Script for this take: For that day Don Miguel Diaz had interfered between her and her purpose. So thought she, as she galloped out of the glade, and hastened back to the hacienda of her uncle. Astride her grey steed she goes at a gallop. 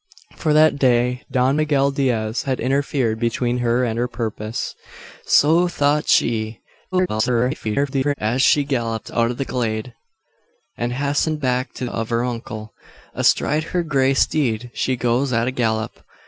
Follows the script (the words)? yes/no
no